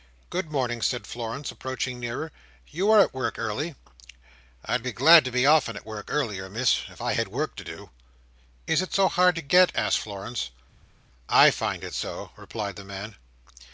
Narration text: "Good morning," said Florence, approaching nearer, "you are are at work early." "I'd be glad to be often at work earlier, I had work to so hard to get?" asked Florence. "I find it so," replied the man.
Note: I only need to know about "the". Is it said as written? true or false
true